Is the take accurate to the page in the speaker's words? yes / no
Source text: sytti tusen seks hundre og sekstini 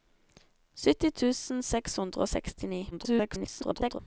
no